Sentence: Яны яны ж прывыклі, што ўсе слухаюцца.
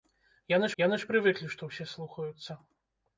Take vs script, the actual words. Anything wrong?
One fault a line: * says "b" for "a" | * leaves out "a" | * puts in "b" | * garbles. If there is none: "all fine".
all fine